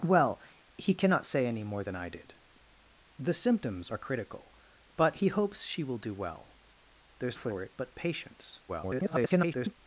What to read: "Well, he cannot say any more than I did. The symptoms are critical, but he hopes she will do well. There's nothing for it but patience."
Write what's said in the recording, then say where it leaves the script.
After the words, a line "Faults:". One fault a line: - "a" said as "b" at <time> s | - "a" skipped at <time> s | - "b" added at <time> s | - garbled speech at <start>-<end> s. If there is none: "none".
"Well, he cannot say any more than I did. The symptoms are critical, but he hopes she will do well. There's for it but patience." [garbled]
Faults:
- "nothing" skipped at 7.4 s
- garbled speech at 8.7-9.8 s